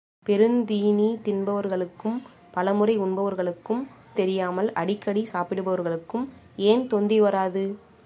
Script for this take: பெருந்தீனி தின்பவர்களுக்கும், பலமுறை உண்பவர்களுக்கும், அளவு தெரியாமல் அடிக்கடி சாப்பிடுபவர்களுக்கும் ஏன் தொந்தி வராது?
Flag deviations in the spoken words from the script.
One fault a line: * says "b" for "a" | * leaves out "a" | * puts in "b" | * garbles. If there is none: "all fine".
* leaves out "அளவு"